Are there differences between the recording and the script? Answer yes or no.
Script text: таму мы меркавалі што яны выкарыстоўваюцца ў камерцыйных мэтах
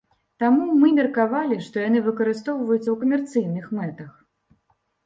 no